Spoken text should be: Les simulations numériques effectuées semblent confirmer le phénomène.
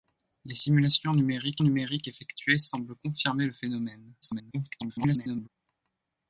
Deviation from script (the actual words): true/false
true